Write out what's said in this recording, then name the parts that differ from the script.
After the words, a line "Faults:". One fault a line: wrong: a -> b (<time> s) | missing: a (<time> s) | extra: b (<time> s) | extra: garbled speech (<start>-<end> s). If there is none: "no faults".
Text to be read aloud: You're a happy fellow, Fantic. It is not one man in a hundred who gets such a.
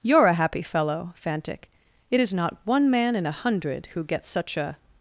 You're a happy fellow, Fantic. It is not one man in a hundred who gets such a.
Faults:
no faults